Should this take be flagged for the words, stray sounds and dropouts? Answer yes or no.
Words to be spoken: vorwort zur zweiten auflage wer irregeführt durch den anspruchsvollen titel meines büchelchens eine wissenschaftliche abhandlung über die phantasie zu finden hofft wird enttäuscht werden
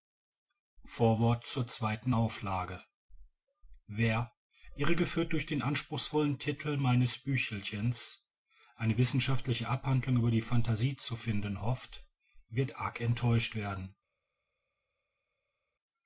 yes